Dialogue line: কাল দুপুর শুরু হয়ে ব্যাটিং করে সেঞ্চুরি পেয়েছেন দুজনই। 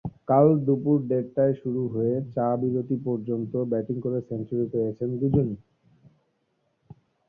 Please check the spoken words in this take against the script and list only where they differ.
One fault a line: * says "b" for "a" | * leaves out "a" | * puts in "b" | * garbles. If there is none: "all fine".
* puts in "দেড়টায়"
* puts in "চা-বিরতি পর্যন্ত"